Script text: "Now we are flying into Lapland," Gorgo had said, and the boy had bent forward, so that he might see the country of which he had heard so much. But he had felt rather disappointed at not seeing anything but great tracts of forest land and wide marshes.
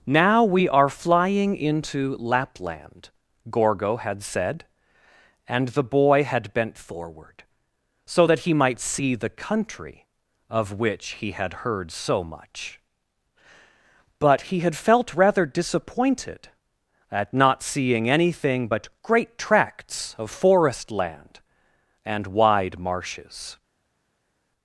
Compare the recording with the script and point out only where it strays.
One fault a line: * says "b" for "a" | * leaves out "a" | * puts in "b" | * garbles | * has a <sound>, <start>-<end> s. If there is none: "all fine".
all fine